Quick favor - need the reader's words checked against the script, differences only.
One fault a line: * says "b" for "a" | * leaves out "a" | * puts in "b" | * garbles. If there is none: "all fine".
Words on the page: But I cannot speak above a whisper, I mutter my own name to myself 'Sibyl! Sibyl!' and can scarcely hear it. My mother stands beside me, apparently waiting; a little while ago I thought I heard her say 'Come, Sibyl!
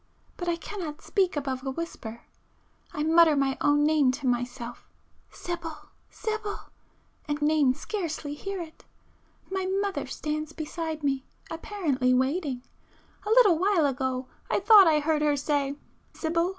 * says "name" for "can"
* leaves out "Come"